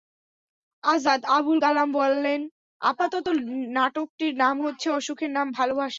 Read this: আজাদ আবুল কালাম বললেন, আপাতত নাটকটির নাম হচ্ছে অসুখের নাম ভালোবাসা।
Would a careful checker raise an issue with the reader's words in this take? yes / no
no